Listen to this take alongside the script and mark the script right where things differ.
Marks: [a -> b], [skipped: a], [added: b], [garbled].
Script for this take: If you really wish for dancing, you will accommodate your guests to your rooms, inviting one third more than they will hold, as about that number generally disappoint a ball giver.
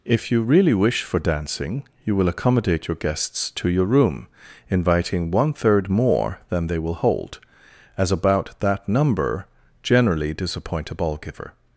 If you really wish for dancing, you will accommodate your guests to your [rooms, -> room] inviting one third more than they will hold, as about that number generally disappoint a ball giver.